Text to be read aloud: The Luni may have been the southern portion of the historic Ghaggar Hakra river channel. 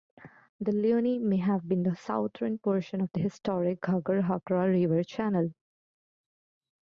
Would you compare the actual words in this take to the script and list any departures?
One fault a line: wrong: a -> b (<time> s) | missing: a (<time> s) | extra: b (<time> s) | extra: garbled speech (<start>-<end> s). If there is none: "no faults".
no faults